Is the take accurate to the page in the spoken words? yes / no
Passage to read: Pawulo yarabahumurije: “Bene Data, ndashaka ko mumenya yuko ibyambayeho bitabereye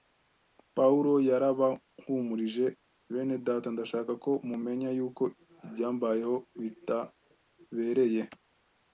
yes